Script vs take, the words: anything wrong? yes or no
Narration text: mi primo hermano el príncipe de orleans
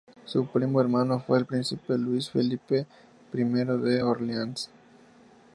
yes